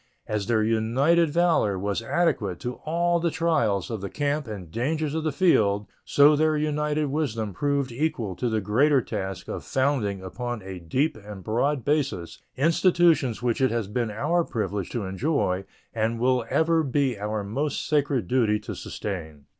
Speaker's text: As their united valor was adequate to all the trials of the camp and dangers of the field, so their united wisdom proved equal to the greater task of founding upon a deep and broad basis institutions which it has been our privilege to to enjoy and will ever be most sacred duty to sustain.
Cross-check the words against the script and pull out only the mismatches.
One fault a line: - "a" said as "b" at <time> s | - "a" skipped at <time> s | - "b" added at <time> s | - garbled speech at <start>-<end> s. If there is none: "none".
- "to" skipped at 15.0 s
- "our" added at 17.2 s